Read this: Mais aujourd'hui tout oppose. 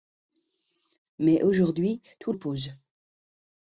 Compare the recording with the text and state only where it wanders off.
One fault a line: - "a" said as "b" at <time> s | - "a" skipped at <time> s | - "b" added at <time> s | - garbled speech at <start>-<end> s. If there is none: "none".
none